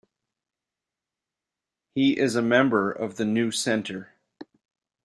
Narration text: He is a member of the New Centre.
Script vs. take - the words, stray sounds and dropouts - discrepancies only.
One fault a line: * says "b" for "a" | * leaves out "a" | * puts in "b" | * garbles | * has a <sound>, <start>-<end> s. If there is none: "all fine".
all fine